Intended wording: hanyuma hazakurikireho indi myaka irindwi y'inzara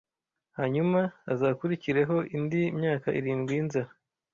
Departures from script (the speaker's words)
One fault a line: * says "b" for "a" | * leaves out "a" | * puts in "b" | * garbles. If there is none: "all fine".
all fine